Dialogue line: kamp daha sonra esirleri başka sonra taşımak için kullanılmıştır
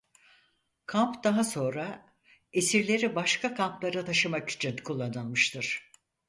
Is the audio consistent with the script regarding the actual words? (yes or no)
no